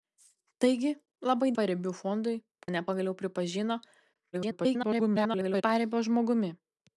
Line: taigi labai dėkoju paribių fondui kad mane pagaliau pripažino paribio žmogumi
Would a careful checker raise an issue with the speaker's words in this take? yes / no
yes